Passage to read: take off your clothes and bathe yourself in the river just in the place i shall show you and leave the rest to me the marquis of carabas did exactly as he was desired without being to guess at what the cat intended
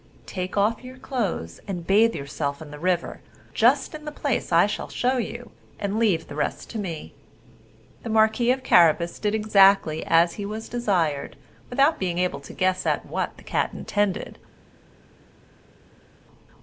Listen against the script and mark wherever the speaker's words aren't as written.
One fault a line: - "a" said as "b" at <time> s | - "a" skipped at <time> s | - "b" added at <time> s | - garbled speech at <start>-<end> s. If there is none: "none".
- "able" added at 12.2 s